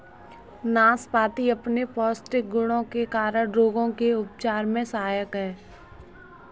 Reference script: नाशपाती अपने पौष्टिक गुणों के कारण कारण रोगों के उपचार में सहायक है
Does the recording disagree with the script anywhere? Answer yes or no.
yes